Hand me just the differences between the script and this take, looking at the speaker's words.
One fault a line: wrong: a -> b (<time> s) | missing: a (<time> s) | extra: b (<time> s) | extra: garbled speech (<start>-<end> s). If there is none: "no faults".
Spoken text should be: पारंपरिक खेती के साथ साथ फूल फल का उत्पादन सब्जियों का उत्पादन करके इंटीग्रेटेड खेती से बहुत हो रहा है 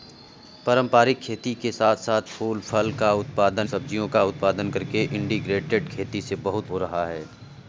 no faults